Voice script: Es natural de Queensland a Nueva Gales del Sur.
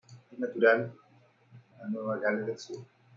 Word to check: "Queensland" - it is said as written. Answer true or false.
false